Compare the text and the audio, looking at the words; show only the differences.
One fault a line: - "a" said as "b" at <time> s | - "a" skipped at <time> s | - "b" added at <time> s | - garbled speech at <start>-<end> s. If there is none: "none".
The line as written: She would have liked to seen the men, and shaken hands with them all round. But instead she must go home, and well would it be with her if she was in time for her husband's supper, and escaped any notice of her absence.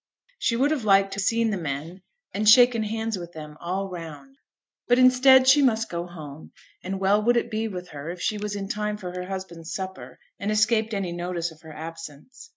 none